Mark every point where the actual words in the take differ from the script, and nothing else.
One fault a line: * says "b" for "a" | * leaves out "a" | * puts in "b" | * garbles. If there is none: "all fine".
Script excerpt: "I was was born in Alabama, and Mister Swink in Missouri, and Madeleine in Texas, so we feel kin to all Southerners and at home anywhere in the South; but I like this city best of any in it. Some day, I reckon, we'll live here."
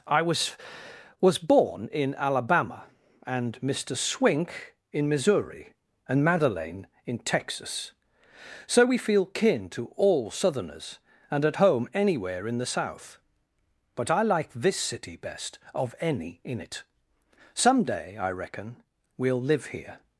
all fine